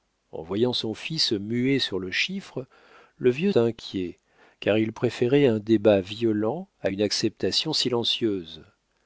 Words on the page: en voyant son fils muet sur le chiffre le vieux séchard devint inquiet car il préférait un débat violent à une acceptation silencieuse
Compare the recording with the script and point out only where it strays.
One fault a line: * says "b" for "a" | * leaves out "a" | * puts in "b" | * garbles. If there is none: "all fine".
* leaves out "séchard devint"